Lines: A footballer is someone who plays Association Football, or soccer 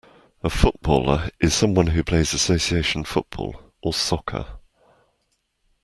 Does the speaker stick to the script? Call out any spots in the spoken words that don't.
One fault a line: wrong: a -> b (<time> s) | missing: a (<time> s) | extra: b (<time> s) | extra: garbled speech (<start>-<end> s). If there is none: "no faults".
no faults